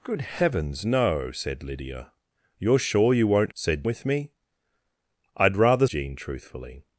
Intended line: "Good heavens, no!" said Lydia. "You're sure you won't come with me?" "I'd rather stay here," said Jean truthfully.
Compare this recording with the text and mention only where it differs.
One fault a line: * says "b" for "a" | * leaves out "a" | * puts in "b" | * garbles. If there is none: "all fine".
* says "said" for "come"
* leaves out "stay here said"